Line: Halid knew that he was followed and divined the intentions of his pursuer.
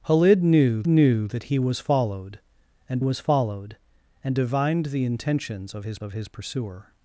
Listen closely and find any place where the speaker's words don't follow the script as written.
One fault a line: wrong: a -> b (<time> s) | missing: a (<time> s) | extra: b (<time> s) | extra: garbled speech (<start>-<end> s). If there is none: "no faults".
extra: knew (0.9 s)
extra: was followed and (3.0 s)
extra: of his (6.0 s)